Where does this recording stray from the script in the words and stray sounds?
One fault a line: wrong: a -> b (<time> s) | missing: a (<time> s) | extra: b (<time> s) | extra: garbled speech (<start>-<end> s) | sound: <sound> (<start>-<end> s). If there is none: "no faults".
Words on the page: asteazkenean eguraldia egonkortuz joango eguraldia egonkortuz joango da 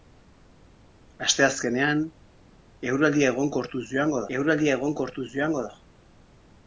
no faults